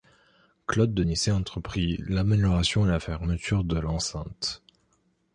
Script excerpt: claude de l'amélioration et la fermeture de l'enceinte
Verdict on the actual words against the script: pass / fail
fail